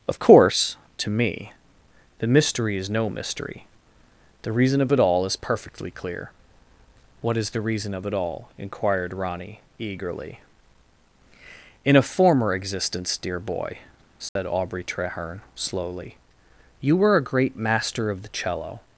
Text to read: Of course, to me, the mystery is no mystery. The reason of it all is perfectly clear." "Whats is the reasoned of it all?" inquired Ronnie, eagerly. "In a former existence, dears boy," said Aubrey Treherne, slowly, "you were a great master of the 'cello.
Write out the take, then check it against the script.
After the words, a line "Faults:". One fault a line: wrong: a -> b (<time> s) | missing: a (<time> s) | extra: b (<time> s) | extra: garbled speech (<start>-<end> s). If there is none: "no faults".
Of course, to me, the mystery is no mystery. The reason of it all is perfectly clear." "What is the reason of it all?" inquired Ronnie, eagerly. "In a former existence, dear boy," said Aubrey Treherne, slowly, "you were a great master of the 'cello.
Faults:
wrong: Whats -> What (7.2 s)
wrong: reasoned -> reason (7.6 s)
wrong: dears -> dear (13.2 s)